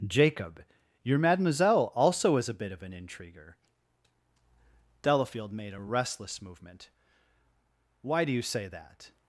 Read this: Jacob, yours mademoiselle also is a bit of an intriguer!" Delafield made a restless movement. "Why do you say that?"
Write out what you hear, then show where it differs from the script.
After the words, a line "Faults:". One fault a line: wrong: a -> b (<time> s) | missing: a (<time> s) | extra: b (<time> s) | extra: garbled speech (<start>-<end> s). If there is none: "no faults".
Jacob, your mademoiselle also is a bit of an intriguer!" Delafield made a restless movement. "Why do you say that?"
Faults:
wrong: yours -> your (1.0 s)